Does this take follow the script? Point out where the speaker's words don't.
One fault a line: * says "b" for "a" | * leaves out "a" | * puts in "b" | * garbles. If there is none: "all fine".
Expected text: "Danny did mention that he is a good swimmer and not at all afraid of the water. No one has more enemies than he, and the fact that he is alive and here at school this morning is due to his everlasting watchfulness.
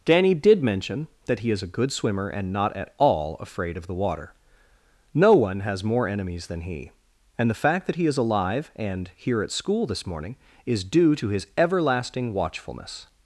all fine